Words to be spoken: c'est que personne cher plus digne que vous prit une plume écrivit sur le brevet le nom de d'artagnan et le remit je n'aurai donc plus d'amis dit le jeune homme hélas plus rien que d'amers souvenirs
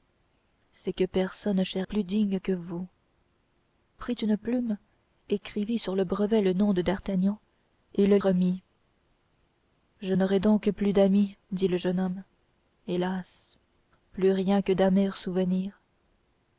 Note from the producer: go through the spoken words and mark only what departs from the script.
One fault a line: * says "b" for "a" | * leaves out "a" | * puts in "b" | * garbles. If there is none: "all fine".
all fine